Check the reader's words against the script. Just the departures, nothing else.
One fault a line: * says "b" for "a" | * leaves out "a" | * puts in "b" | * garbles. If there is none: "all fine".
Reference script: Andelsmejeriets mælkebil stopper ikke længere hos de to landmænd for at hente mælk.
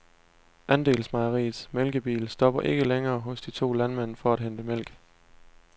all fine